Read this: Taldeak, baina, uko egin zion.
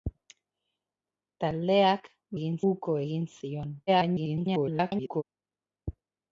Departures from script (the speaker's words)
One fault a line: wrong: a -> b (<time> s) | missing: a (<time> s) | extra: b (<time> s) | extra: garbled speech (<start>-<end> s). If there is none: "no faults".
wrong: baina -> egin (2.4 s)
extra: garbled speech (3.9-5.2 s)